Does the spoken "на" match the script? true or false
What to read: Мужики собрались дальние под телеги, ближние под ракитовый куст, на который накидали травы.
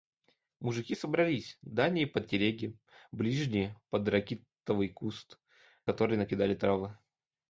false